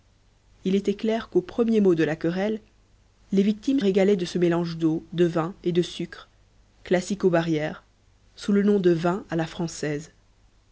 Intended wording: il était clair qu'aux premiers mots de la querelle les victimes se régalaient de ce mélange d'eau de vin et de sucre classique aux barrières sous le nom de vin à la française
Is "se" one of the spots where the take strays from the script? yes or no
yes